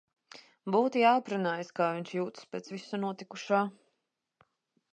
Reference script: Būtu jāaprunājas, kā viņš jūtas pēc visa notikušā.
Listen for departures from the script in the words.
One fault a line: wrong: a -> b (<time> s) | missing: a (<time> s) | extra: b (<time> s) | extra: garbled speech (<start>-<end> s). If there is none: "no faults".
no faults